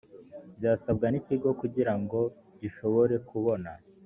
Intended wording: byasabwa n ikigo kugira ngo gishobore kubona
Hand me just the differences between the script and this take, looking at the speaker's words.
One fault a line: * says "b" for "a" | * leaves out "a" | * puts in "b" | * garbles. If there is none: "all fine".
all fine